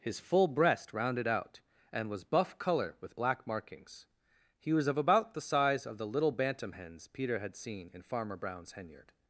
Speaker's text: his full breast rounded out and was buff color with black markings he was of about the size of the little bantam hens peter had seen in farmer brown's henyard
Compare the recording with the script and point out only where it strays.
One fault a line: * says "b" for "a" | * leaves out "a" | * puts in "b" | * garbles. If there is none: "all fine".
all fine